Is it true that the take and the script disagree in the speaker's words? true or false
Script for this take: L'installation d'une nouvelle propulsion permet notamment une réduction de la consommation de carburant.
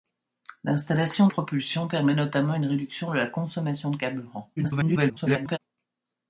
true